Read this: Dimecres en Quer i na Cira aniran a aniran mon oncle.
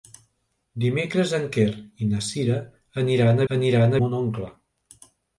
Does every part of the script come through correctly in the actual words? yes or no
yes